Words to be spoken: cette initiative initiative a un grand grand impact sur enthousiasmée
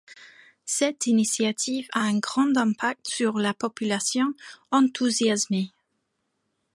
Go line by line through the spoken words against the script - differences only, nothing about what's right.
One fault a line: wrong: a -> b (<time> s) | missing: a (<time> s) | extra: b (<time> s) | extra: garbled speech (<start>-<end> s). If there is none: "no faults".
missing: initiative (1.9 s)
missing: grand (2.6 s)
extra: la population (3.4 s)